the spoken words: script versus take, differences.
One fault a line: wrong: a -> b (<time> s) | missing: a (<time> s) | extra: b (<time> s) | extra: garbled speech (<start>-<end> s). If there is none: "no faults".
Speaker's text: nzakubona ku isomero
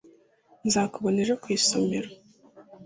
extra: ejo (1.2 s)